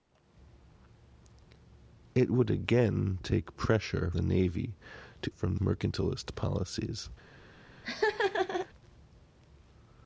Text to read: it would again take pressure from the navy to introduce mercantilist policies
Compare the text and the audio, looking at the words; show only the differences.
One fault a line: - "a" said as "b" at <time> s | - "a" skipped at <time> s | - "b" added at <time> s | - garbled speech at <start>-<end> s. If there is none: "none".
- "from" skipped at 4.1 s
- "introduce" said as "from" at 5.3 s